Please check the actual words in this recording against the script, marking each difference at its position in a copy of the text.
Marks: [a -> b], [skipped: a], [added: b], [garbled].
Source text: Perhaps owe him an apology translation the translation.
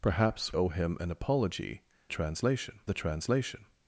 Perhaps owe him an apology translation the translation.